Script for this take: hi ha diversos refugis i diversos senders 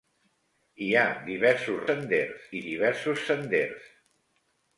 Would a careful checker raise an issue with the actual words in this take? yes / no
yes